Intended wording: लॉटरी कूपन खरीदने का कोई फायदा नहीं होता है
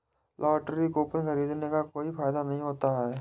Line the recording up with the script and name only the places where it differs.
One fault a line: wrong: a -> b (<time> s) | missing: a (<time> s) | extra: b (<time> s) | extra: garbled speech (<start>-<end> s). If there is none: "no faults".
no faults